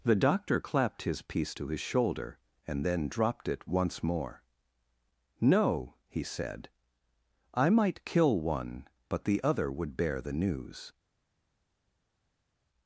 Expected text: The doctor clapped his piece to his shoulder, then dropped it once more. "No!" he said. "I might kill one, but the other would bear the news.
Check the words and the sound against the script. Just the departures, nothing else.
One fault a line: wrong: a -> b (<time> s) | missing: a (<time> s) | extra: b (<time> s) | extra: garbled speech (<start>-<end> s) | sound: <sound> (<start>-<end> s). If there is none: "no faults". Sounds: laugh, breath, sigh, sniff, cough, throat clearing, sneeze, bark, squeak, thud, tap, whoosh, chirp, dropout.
extra: and (2.7 s)